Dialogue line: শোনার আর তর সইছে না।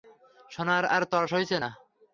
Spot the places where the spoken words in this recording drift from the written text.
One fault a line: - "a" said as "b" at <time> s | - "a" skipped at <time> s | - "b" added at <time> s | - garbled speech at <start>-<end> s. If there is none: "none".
none